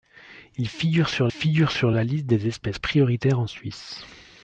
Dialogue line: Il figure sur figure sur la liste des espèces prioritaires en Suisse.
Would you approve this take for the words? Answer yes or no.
yes